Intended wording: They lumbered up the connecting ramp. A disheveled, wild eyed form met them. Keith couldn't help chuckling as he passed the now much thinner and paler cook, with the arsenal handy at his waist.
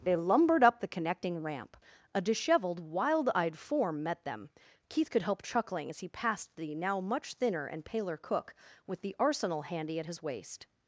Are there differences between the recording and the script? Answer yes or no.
yes